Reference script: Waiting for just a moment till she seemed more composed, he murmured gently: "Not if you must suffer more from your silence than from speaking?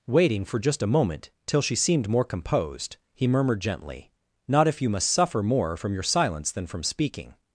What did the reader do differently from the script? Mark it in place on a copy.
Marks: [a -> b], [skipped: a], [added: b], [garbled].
Waiting for just a moment till she seemed more composed, he murmured gently: "Not if you must suffer more from your silence than from speaking?